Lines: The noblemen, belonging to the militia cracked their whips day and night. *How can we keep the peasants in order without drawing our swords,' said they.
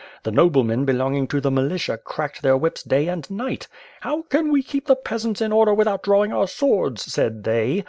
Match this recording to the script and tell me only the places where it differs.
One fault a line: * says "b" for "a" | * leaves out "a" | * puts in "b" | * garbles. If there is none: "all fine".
all fine